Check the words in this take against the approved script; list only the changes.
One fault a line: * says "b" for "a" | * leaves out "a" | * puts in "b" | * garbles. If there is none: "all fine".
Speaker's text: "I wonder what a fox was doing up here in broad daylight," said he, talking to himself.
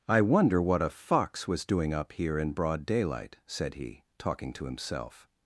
all fine